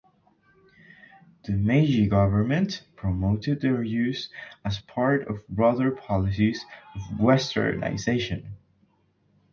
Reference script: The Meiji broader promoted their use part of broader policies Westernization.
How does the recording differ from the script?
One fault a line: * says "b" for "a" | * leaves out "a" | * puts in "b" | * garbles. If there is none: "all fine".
* says "government" for "broader"
* puts in "as"
* puts in "of"